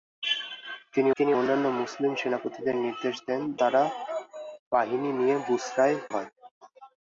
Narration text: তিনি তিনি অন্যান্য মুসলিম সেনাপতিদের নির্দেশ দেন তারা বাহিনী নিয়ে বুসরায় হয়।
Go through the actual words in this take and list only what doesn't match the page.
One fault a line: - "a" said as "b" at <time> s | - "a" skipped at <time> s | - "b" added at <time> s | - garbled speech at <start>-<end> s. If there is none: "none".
none